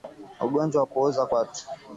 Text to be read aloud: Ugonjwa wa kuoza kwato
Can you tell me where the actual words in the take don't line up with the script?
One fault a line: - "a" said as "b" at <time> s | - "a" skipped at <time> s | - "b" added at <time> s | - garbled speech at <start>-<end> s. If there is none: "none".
none